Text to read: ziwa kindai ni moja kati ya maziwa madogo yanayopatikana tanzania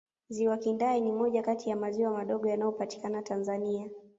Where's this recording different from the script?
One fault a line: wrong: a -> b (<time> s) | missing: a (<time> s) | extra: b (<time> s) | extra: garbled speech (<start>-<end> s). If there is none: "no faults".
no faults